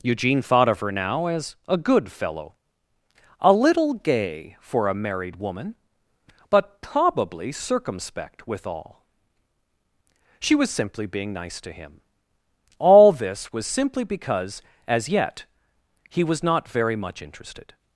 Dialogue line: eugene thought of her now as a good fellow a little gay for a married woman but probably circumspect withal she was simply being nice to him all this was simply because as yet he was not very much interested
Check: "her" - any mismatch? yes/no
no